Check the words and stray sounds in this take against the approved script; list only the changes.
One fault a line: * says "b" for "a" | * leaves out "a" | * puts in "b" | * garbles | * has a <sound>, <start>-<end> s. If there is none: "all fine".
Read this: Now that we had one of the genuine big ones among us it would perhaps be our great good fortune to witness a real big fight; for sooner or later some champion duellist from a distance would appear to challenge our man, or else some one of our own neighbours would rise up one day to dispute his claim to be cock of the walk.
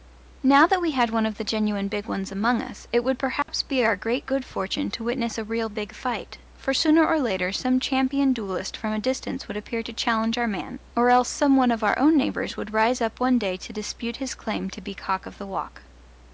* has a dropout, 3.4-3.5 s